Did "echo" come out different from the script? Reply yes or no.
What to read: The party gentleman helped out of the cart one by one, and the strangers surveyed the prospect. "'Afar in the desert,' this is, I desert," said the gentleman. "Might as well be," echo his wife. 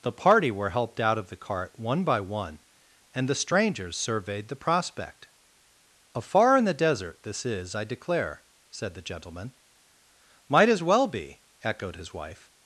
yes